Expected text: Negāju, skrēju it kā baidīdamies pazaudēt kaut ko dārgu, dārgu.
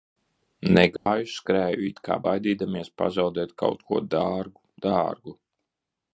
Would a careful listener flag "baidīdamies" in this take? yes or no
no